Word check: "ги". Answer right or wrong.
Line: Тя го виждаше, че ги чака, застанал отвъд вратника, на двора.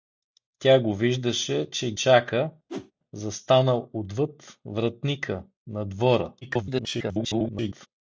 wrong